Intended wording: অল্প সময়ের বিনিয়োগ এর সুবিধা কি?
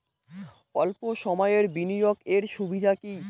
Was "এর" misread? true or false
false